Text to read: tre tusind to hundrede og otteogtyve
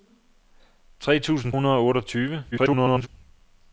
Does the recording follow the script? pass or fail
fail